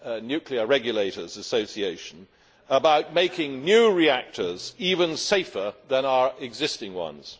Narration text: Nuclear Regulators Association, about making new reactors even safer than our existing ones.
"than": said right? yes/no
yes